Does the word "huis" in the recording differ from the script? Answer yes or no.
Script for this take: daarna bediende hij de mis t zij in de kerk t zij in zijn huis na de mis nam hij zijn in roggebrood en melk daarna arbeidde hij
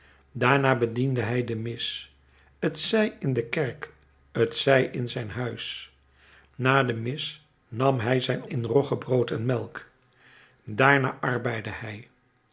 no